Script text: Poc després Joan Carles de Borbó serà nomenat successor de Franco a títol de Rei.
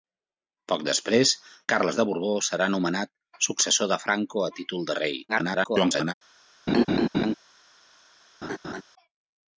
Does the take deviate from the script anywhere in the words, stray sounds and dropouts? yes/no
yes